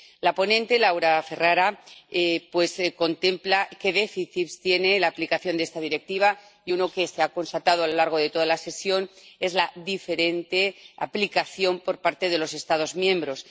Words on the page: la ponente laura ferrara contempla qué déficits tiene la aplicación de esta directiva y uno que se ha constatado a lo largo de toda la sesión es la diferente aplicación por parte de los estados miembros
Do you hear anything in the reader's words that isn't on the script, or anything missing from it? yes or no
no